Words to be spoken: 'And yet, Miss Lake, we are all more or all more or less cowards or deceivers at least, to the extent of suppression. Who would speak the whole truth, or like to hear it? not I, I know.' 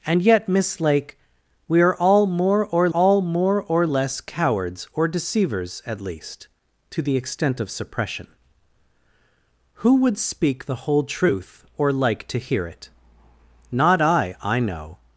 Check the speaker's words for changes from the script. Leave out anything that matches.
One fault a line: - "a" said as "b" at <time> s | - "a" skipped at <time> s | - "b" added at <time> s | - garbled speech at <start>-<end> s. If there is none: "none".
none